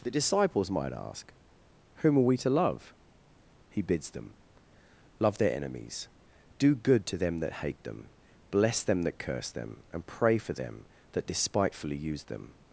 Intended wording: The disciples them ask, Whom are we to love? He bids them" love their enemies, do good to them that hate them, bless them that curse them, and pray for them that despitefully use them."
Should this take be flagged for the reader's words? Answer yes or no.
yes